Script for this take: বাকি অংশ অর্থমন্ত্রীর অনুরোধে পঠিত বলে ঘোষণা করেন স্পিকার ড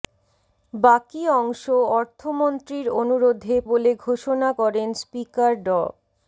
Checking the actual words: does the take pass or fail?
fail